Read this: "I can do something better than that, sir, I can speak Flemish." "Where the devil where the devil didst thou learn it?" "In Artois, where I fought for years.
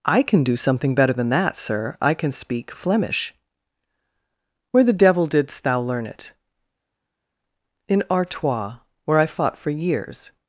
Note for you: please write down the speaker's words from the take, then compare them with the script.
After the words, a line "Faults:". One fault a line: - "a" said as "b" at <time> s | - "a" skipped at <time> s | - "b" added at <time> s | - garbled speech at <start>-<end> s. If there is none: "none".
"I can do something better than that, sir, I can speak Flemish." "Where the devil didst thou learn it?" "In Artois, where I fought for years.
Faults:
- "where the devil" skipped at 5.3 s